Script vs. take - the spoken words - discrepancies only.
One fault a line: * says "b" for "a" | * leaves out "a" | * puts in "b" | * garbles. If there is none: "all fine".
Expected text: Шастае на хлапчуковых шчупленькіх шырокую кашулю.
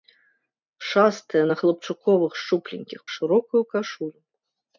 all fine